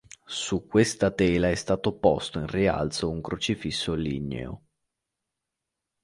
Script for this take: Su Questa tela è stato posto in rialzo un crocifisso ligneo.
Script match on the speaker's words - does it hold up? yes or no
yes